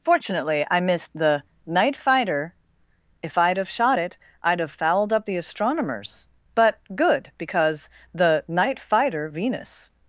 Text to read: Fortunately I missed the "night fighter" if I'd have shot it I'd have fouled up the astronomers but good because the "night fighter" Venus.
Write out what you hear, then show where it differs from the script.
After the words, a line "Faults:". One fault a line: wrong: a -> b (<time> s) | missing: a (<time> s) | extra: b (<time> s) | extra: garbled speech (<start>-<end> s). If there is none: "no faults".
Fortunately I missed the "night fighter" if I'd have shot it I'd have fouled up the astronomers but good because the "night fighter" Venus.
Faults:
no faults